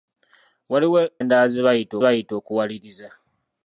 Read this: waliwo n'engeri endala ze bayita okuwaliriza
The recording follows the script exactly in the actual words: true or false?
false